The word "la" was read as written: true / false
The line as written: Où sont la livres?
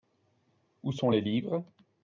false